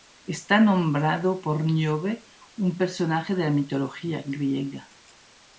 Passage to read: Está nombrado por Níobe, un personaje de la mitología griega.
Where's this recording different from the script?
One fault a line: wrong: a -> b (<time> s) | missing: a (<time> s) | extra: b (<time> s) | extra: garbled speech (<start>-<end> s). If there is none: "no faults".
no faults